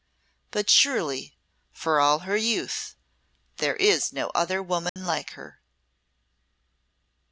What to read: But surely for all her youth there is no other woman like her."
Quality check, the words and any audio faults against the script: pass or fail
fail